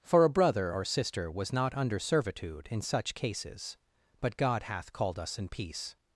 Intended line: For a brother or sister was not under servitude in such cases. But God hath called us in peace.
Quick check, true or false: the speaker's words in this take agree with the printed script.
true